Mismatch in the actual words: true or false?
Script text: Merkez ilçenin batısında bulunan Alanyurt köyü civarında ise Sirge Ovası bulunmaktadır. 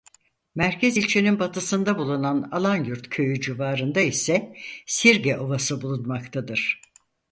false